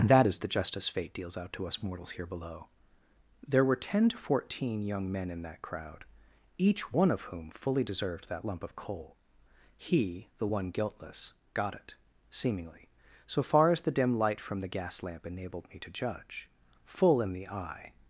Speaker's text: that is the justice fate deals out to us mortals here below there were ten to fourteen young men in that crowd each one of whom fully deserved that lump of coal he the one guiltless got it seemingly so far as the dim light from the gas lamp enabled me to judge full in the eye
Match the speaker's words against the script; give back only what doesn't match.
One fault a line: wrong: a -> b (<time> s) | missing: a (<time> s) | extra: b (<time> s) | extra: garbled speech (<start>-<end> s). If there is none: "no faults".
no faults